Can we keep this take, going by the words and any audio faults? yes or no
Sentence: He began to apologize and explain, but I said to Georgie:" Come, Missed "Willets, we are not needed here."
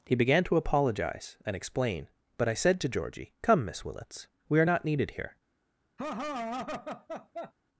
no